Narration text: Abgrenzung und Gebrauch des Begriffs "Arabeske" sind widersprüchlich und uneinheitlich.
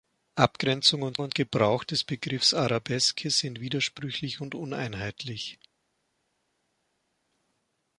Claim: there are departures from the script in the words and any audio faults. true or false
true